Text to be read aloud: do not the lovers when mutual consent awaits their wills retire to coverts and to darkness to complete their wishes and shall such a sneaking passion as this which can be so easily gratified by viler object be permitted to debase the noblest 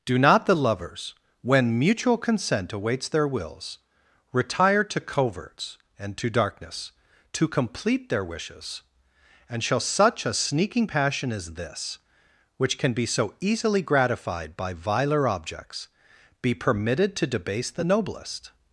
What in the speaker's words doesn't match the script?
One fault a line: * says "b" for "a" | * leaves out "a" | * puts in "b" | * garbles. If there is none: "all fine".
* says "objects" for "object"